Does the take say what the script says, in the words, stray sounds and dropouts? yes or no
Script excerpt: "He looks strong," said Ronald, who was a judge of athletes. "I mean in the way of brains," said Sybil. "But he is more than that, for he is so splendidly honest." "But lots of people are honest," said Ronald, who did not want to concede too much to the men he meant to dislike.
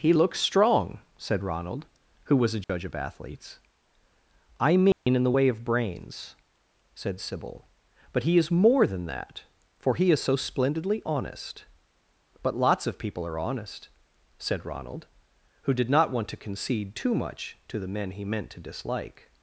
no